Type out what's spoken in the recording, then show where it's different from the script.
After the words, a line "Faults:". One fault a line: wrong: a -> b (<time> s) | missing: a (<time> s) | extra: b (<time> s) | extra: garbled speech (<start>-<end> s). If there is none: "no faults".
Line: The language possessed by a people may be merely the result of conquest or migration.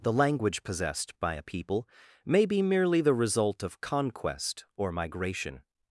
The language possessed by a people may be merely the result of conquest or migration.
Faults:
no faults